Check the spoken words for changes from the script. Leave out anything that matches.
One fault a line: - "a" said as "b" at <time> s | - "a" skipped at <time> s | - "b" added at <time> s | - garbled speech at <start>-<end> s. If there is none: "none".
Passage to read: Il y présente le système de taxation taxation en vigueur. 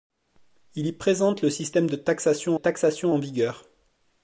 none